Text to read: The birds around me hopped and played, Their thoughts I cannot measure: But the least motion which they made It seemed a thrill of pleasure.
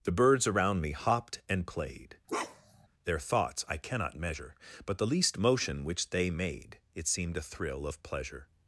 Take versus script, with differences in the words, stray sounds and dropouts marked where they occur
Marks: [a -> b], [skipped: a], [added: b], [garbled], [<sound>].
The birds around me hopped and played, [bark] Their thoughts I cannot measure: But the least motion which they made It seemed a thrill of pleasure.